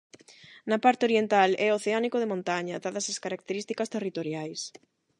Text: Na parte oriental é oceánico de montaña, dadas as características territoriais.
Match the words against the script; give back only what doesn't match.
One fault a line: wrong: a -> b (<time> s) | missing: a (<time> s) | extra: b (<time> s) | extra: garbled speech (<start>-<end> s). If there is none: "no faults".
no faults